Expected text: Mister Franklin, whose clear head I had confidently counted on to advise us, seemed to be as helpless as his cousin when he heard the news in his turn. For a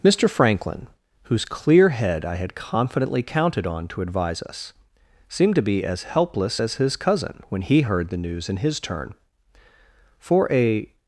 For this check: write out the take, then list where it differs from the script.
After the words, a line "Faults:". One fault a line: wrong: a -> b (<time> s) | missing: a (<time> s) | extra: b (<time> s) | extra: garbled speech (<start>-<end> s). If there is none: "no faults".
Mister Franklin, whose clear head I had confidently counted on to advise us, seemed to be as helpless as his cousin when he heard the news in his turn. For a
Faults:
no faults